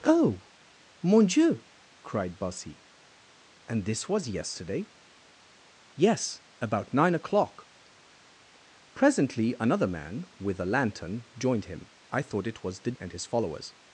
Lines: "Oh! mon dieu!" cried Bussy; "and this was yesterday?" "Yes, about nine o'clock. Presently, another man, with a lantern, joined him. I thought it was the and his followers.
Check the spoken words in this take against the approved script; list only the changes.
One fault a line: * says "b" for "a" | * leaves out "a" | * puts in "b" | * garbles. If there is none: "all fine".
all fine